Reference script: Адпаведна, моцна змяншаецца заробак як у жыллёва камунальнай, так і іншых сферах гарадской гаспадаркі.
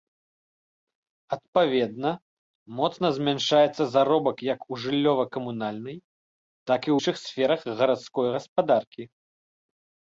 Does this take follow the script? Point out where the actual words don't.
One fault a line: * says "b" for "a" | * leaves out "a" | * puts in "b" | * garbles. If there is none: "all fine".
all fine